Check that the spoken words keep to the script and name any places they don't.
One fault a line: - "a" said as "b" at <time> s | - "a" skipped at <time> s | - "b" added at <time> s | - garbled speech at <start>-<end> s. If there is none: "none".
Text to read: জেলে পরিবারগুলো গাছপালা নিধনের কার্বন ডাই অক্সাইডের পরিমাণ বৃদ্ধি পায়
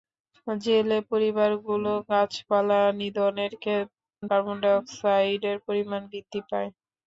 none